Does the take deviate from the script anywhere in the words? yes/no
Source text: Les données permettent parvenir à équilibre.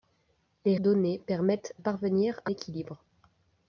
no